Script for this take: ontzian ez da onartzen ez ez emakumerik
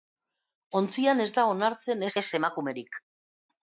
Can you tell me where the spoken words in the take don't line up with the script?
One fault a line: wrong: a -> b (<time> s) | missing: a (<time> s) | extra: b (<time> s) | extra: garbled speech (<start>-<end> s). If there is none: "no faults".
no faults